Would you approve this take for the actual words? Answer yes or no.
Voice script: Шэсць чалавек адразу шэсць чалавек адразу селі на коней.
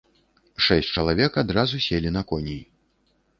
no